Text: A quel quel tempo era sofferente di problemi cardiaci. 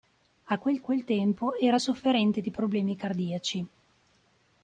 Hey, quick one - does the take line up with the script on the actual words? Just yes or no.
yes